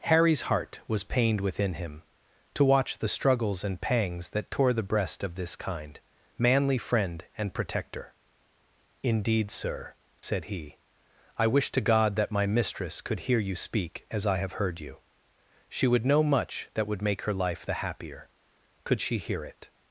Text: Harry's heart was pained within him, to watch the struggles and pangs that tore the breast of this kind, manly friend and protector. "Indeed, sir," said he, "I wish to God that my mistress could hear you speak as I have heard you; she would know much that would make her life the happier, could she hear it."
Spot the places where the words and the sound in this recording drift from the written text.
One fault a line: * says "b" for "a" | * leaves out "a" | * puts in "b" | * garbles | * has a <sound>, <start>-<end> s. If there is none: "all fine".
* has a dropout, 10.2-10.2 s